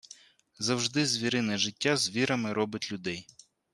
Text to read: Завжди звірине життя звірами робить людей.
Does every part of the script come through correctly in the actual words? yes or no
yes